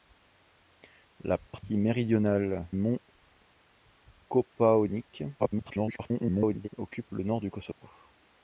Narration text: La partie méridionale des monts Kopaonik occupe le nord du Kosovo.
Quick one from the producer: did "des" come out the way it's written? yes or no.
no